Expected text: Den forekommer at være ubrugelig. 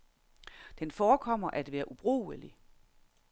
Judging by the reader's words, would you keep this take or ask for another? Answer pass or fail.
pass